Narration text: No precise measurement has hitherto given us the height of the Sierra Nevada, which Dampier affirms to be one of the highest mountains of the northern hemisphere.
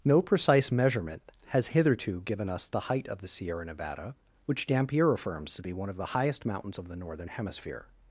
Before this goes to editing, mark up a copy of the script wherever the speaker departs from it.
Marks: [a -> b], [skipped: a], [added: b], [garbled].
No precise measurement has hitherto given us the height of the Sierra Nevada, which Dampier affirms to be one of the highest mountains of the northern hemisphere.